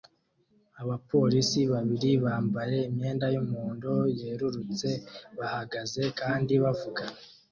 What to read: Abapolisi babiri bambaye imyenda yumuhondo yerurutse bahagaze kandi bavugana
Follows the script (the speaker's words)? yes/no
yes